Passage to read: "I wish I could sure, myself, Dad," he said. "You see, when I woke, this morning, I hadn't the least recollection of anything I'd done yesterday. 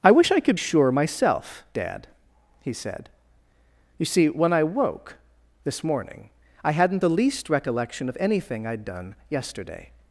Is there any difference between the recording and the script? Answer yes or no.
no